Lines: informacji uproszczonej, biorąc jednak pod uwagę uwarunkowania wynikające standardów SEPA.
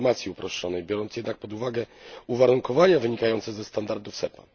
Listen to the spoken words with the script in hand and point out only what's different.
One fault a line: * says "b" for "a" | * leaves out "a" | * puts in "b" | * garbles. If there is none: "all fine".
* puts in "ze"